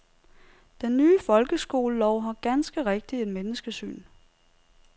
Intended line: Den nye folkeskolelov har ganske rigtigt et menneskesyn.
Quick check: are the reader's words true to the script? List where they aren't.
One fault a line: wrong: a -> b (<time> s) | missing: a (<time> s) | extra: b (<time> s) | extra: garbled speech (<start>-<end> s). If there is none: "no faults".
no faults